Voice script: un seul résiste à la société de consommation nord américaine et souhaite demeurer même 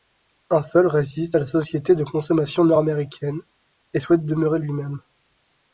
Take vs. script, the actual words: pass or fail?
fail